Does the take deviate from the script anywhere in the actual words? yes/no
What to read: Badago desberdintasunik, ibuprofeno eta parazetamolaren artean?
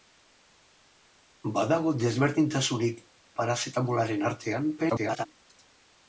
yes